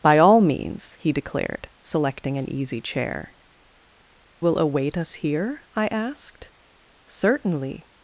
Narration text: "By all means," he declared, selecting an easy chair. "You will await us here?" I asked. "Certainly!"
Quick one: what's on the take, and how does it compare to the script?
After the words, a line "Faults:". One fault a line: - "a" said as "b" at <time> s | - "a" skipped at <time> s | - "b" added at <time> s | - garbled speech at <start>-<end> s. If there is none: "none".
"By all means," he declared, selecting an easy chair. "Will await us here?" I asked. "Certainly!"
Faults:
- "You" skipped at 3.3 s